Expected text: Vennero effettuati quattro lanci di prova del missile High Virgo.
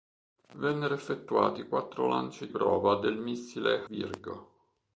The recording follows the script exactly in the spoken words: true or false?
false